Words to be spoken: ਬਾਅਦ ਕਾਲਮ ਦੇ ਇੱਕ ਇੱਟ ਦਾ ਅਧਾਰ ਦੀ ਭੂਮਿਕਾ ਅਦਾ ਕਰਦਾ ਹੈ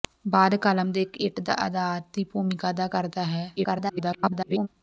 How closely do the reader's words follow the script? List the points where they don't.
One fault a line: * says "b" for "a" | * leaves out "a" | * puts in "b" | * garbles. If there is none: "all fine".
* garbles